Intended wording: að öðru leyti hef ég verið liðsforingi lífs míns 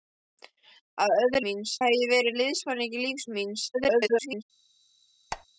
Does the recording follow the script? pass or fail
fail